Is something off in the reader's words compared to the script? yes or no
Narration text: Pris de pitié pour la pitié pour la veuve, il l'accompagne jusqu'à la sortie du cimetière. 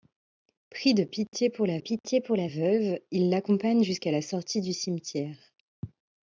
no